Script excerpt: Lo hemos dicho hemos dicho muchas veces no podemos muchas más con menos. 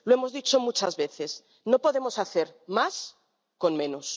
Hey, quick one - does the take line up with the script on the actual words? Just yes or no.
no